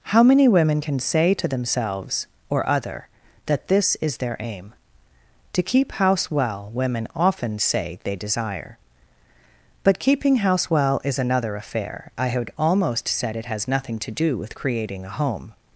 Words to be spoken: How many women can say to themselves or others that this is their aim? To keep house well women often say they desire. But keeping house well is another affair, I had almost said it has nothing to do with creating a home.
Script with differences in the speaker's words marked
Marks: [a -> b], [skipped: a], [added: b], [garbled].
How many women can say to themselves or [others -> other] that this is their aim? To keep house well women often say they desire. But keeping house well is another affair, I had almost said it has nothing to do with creating a home.